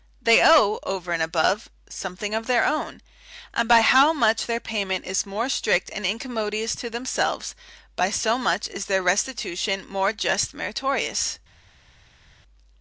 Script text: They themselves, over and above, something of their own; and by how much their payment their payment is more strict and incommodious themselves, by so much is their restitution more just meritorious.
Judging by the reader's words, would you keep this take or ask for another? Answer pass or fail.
fail